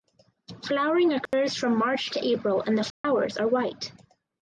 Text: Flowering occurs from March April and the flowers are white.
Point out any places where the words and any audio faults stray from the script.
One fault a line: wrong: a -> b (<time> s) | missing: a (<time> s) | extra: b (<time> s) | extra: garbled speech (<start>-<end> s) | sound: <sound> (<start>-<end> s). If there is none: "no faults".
sound: dropout (1.3-1.3 s)
extra: to (2.1 s)
sound: dropout (2.9-3.0 s)